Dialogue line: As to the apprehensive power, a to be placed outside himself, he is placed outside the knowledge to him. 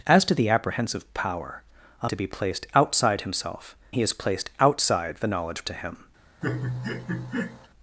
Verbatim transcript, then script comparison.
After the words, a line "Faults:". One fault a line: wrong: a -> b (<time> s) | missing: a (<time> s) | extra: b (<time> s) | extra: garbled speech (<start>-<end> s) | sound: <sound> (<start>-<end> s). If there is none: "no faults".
As to the apprehensive power, a to be placed outside himself, he is placed outside the knowledge to him.
Faults:
sound: laugh (6.4-7.7 s)